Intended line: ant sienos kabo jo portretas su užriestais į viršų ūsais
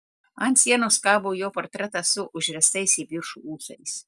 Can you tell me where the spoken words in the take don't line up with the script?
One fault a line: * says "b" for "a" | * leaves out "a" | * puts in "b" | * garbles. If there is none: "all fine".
all fine